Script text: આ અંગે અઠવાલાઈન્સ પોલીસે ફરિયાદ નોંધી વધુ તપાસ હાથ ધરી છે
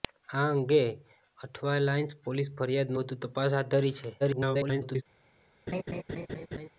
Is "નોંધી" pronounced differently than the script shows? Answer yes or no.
yes